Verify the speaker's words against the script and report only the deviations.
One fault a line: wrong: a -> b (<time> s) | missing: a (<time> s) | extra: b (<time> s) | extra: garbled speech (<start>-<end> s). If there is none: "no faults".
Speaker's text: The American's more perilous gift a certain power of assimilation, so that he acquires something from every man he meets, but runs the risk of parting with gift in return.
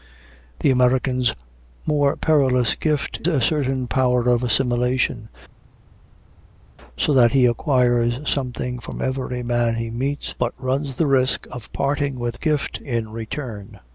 no faults